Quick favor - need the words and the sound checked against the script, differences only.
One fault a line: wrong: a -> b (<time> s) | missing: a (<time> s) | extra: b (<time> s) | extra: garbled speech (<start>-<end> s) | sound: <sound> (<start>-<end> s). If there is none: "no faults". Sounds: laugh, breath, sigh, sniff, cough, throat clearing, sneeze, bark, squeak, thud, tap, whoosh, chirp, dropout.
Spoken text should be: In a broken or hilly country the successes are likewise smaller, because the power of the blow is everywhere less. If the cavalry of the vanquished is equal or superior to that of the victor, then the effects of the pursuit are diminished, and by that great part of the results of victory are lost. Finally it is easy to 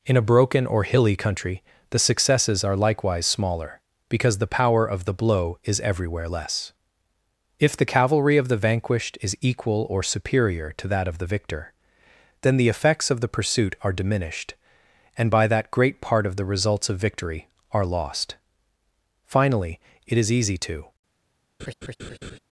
sound: laugh (21.6-22.4 s)